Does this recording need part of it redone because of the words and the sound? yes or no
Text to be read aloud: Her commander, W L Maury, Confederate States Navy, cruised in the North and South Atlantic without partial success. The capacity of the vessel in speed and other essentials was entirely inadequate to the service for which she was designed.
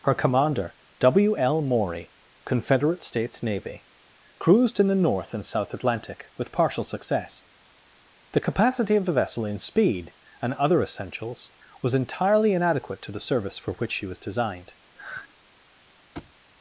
yes